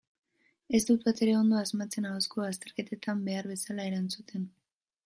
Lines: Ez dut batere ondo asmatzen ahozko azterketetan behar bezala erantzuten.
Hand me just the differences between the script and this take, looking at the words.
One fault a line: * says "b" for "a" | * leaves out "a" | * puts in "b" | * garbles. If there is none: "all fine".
all fine